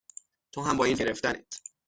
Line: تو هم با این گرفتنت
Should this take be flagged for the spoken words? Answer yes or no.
no